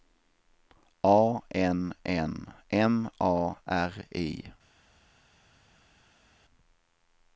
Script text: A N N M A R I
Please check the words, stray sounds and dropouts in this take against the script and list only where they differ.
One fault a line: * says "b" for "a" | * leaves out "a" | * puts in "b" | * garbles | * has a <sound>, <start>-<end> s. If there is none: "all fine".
all fine